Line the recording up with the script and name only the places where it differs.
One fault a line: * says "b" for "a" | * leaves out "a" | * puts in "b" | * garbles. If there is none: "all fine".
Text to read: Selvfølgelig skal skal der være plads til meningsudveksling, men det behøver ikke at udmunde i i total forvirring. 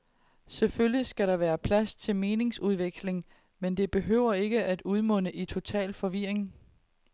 * leaves out "skal"
* leaves out "i"